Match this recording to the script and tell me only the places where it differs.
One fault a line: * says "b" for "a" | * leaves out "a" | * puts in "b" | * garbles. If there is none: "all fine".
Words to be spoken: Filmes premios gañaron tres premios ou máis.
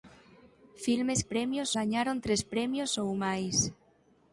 all fine